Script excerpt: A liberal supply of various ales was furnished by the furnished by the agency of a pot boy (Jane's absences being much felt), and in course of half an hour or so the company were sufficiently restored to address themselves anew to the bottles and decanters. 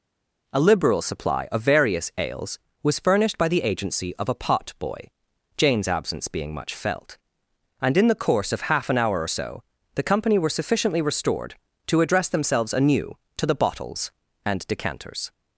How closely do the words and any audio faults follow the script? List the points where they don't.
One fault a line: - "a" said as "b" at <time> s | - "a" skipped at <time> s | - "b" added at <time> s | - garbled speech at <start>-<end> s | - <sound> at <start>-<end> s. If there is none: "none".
- "furnished by the" skipped at 3.6 s
- "absences" said as "absence" at 5.9 s
- "the" added at 8.1 s